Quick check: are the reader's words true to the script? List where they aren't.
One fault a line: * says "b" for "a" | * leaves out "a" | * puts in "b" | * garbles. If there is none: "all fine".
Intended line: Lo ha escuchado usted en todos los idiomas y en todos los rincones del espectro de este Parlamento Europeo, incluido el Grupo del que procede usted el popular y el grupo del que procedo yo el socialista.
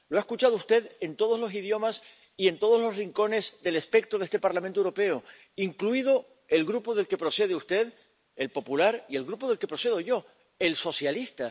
all fine